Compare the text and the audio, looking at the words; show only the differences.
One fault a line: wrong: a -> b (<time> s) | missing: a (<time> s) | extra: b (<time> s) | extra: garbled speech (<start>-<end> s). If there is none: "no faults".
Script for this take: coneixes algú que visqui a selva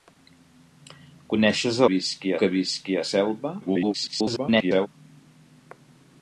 wrong: algú -> visqui (1.9 s)
extra: garbled speech (3.6-4.9 s)